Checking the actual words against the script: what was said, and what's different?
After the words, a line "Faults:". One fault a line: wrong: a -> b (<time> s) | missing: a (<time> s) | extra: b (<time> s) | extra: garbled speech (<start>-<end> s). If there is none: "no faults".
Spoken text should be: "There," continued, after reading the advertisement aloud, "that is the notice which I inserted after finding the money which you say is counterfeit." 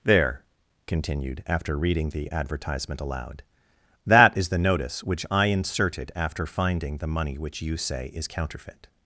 "There," continued, after reading the advertisement aloud, "that is the notice which I inserted after finding the money which you say is counterfeit."
Faults:
no faults